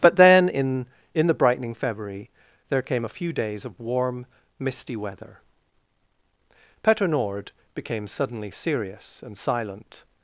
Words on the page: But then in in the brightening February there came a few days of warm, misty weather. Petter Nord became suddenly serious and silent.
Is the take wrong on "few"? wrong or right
right